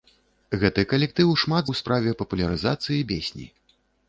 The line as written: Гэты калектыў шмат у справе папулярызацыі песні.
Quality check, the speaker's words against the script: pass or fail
pass